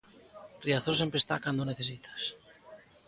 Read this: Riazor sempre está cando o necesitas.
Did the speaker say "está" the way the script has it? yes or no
yes